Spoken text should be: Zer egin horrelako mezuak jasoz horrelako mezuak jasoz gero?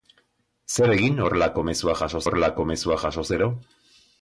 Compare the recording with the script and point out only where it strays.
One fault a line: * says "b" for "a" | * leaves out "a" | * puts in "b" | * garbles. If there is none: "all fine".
all fine